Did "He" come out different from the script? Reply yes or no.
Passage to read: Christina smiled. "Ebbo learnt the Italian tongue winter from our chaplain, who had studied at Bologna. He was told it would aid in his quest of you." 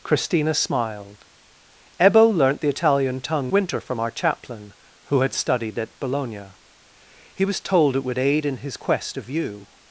no